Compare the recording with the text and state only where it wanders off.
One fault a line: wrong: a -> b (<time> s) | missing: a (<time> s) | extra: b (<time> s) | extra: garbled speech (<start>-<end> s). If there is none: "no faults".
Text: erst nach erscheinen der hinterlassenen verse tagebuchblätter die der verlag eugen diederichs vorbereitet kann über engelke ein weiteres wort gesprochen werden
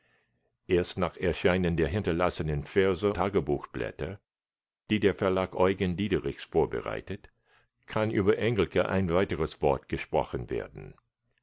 no faults